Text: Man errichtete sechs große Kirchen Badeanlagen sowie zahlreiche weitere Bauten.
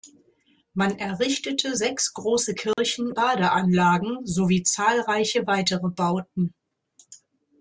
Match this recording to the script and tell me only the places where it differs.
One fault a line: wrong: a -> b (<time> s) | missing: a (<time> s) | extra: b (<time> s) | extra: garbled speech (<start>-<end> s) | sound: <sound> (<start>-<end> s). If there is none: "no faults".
sound: dropout (2.7-2.8 s)